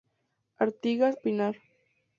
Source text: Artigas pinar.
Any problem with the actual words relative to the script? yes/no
no